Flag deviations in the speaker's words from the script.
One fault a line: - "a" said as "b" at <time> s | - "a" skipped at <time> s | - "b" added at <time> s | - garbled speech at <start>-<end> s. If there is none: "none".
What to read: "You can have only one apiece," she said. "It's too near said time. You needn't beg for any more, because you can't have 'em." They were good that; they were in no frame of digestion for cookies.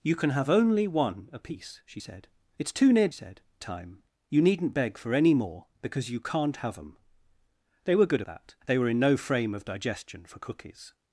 none